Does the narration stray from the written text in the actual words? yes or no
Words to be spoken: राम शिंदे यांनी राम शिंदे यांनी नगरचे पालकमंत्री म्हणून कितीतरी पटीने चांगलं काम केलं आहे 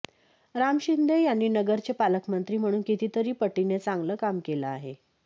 yes